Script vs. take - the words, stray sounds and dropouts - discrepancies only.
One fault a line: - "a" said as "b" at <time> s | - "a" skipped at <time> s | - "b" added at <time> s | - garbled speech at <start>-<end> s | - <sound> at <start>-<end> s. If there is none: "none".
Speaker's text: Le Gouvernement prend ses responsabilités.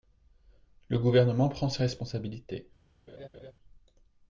- laugh at 3.1-3.5 s